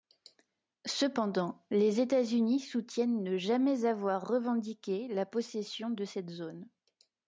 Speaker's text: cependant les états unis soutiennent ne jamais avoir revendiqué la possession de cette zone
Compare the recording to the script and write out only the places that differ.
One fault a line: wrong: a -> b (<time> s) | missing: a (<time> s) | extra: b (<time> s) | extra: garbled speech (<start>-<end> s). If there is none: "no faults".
no faults